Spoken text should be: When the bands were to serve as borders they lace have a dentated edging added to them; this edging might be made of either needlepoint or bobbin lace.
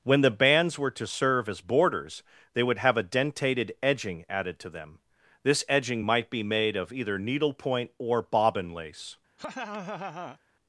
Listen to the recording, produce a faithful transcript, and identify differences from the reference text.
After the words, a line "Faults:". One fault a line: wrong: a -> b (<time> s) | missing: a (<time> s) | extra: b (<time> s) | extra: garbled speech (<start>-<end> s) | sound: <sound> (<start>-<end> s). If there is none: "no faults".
When the bands were to serve as borders they would have a dentated edging added to them; this edging might be made of either needlepoint or bobbin lace.
Faults:
wrong: lace -> would (2.6 s)
sound: laugh (9.4-10.4 s)